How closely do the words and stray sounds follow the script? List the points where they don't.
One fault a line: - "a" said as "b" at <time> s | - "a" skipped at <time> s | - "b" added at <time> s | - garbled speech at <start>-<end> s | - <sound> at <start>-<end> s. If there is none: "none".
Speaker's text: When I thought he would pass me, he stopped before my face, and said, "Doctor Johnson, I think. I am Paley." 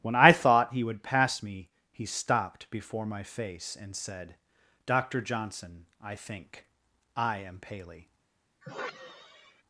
- sigh at 8.6-9.6 s